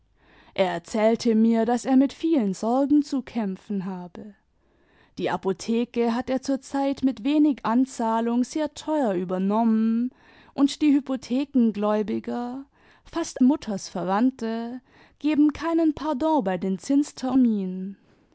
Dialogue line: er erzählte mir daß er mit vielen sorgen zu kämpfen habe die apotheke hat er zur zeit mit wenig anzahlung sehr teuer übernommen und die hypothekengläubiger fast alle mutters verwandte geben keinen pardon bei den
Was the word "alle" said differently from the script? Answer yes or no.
yes